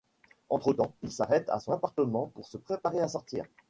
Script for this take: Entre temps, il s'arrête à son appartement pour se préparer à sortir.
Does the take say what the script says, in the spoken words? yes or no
yes